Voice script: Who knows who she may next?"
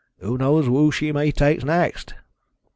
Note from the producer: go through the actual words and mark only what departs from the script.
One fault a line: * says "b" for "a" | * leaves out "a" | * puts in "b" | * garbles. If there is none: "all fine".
* puts in "take"